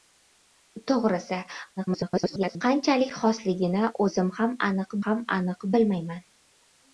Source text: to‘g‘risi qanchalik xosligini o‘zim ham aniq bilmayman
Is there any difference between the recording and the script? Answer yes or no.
yes